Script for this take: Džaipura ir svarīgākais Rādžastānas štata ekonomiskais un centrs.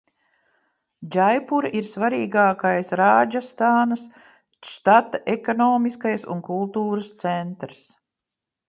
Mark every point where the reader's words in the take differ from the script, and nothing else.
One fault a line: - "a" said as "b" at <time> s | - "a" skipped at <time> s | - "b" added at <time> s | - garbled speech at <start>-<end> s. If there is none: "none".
- "kultūras" added at 6.5 s